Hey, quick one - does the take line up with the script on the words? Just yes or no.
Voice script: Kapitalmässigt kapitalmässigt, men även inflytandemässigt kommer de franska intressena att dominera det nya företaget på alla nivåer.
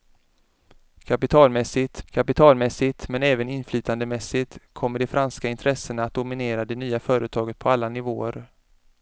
yes